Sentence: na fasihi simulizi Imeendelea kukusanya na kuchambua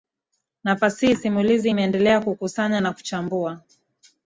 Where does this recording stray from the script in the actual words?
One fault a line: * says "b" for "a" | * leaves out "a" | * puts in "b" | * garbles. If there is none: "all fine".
all fine